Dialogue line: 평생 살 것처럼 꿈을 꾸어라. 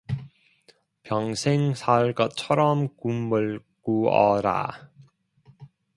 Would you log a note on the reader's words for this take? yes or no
no